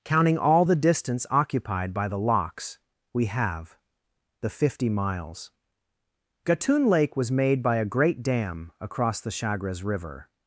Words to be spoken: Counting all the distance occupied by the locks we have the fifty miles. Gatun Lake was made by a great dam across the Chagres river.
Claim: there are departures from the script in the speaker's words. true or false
false